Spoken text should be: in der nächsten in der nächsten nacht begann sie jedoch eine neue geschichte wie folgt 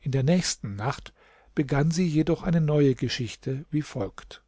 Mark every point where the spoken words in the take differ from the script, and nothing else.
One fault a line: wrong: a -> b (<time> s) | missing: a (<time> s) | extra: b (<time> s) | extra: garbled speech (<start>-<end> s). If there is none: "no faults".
missing: in der nächsten (0.8 s)